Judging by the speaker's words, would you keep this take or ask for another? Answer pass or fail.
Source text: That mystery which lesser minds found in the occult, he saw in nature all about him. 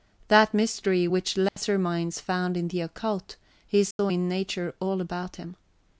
pass